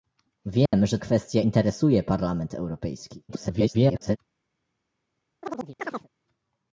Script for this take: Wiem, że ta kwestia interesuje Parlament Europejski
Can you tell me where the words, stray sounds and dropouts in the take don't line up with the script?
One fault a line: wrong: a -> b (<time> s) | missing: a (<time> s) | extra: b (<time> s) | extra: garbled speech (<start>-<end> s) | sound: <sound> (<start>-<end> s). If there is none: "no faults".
sound: dropout (0.7-0.7 s)
missing: ta (1.0 s)
extra: garbled speech (3.3-4.2 s)
sound: chirp (5.4-6.1 s)